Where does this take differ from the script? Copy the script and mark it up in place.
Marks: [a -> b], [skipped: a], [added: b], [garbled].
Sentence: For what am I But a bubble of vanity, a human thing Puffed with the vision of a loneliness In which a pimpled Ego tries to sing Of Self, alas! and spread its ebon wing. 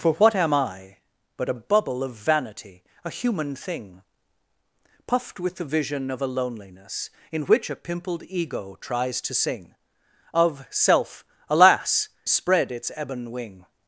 For what am I But a bubble of vanity, a human thing Puffed with the vision of a loneliness In which a pimpled Ego tries to sing Of Self, alas! [skipped: and] spread its ebon wing.